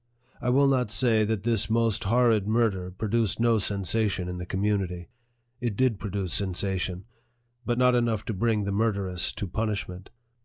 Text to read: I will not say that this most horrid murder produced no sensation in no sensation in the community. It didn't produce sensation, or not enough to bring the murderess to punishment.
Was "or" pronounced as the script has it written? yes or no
no